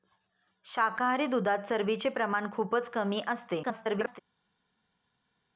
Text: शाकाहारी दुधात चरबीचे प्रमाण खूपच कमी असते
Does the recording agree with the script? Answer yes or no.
no